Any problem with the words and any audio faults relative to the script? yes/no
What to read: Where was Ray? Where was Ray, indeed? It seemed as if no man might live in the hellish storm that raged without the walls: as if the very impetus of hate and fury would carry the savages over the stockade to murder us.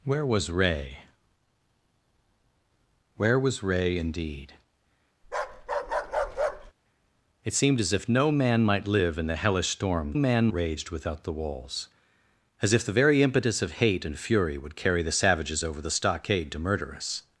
yes